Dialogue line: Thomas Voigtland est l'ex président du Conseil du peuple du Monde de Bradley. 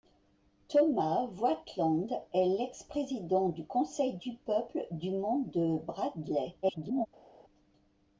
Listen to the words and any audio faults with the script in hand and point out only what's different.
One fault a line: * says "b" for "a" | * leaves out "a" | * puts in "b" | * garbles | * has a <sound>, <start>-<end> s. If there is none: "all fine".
* garbles